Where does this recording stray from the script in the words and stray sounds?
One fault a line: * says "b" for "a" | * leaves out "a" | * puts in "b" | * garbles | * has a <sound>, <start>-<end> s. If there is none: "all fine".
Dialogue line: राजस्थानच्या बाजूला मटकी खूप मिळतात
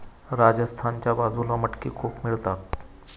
all fine